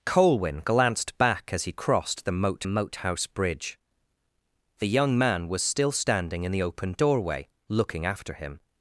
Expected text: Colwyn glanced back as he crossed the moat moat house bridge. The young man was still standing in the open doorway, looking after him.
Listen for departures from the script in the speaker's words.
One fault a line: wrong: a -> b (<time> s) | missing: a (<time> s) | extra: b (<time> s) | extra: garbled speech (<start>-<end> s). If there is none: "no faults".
no faults